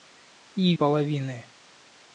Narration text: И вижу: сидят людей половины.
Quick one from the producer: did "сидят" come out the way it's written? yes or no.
no